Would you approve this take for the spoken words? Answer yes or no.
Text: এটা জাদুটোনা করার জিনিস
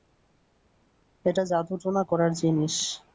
yes